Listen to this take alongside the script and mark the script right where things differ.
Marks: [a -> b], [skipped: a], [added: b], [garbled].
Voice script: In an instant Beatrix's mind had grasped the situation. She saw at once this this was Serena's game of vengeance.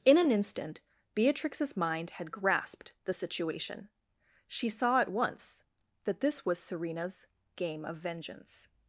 In an instant Beatrix's mind had grasped the situation. She saw at once [this -> that] this was Serena's game of vengeance.